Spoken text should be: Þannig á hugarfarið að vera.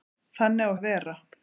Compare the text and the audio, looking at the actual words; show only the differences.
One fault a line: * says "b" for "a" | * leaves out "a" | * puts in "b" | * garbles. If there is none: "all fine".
* leaves out "hugarfarið"